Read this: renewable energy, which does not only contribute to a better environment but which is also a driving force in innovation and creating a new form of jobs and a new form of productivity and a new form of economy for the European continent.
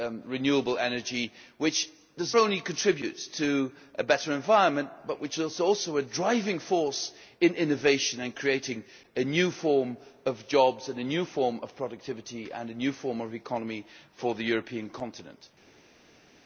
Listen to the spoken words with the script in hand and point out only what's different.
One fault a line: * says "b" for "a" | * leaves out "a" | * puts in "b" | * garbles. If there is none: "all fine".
* leaves out "not"